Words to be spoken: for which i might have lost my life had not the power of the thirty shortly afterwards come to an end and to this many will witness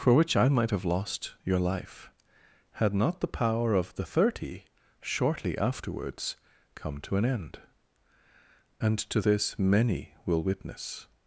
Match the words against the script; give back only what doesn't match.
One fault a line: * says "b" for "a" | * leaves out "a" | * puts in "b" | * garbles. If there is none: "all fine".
* says "your" for "my"